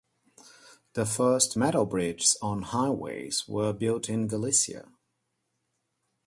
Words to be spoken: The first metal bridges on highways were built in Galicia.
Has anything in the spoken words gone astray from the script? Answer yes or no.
no